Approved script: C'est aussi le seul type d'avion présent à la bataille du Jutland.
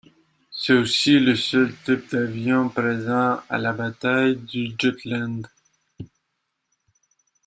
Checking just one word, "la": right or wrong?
right